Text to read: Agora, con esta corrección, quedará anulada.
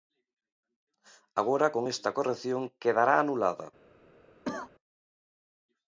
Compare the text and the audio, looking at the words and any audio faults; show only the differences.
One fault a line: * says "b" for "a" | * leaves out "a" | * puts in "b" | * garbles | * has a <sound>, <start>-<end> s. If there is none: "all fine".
* has a cough, 4.4-4.7 s